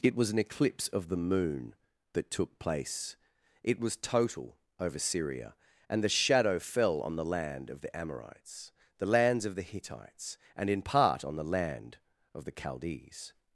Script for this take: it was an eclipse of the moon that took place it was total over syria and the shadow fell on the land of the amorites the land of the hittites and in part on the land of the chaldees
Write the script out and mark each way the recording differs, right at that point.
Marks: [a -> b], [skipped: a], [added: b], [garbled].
it was an eclipse of the moon that took place it was total over syria and the shadow fell on the land of the amorites the [land -> lands] of the hittites and in part on the land of the chaldees